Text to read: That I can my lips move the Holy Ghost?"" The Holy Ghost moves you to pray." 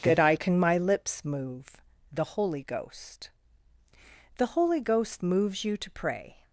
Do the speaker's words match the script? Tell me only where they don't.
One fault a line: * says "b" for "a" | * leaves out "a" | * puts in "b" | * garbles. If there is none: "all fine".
all fine